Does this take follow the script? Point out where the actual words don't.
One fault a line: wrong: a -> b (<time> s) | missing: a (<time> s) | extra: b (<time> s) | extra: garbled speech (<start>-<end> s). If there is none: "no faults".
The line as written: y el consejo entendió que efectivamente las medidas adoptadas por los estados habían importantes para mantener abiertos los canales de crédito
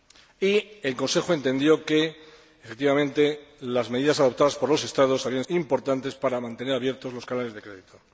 no faults